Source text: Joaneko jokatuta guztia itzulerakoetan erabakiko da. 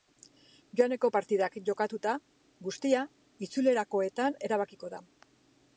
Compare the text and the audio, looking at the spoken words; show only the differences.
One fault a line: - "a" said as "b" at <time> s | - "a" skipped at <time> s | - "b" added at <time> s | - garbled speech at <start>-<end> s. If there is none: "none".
- "partidak" added at 1.1 s